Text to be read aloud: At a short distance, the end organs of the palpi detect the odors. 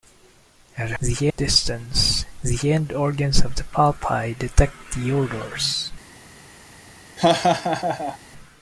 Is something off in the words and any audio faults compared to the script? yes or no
yes